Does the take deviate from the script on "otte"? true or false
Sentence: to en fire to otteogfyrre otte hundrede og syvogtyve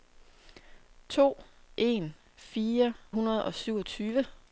true